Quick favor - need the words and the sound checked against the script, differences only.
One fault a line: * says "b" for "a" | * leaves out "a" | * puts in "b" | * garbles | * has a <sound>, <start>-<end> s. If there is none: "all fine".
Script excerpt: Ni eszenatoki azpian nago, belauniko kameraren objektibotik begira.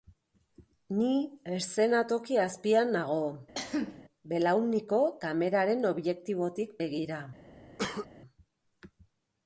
* has a cough, 3.6-4.0 s
* has a cough, 7.8-8.1 s